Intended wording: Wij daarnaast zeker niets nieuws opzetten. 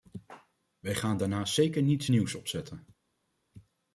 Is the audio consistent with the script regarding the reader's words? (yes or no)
no